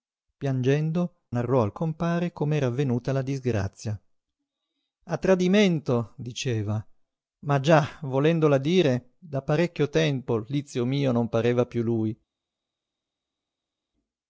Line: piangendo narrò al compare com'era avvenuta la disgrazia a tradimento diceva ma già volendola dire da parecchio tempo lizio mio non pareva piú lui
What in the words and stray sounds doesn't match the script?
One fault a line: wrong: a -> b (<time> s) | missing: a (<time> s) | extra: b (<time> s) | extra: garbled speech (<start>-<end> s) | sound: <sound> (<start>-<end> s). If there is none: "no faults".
no faults